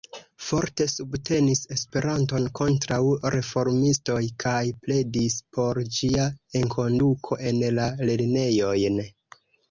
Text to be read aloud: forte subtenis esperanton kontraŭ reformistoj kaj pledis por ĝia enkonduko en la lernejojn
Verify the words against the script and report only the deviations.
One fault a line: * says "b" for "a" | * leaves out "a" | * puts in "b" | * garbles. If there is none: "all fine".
all fine